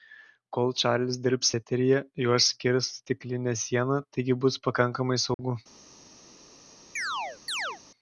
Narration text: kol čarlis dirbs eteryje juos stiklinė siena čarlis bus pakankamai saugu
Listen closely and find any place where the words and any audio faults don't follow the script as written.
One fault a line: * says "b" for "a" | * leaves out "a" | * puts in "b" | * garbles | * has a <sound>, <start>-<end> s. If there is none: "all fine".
* puts in "skirs"
* says "taigi" for "čarlis"
* has a dropout, 5.3-5.4 s
* has a chirp, 7.0-7.8 s